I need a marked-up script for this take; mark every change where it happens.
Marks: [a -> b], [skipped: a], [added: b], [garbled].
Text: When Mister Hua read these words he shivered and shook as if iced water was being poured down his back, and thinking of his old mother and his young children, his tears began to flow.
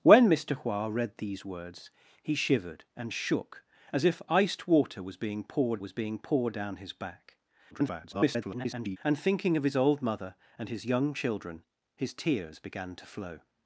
When Mister Hua read these words he shivered and shook as if iced water was being poured [added: was being poured] down his back, [garbled] and thinking of his old mother and his young children, his tears began to flow.